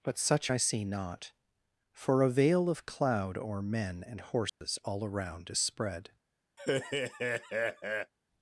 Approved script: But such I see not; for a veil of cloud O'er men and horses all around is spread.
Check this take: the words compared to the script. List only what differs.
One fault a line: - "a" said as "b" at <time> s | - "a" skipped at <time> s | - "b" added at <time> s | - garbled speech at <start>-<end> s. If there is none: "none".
none